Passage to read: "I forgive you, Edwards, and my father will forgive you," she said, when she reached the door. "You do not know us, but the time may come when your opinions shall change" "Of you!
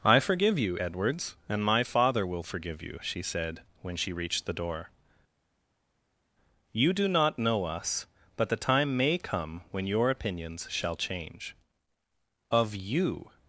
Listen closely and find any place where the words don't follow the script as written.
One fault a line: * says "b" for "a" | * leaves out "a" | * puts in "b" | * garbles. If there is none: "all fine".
all fine